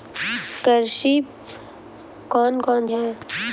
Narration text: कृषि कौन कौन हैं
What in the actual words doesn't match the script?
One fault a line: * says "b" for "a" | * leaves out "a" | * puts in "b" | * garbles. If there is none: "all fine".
all fine